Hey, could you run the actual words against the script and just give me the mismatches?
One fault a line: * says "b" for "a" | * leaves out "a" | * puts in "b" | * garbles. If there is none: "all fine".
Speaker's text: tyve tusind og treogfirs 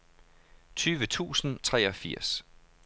* leaves out "og"